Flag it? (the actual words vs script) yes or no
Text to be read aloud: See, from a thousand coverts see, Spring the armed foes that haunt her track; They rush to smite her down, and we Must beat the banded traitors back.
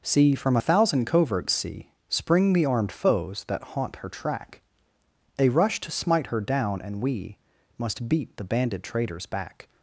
no